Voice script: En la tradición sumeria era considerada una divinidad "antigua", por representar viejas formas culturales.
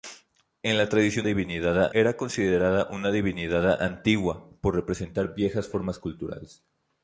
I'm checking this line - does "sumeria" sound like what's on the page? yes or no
no